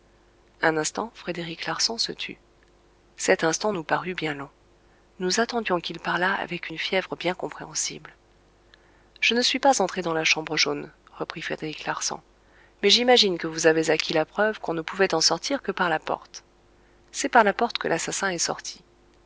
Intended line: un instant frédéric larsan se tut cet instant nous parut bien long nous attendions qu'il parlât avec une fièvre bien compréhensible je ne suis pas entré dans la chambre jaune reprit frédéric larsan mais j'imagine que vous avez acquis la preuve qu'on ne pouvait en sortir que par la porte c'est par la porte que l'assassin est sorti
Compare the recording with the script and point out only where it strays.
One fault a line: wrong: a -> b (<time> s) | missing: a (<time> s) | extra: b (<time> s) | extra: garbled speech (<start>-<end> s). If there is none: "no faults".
no faults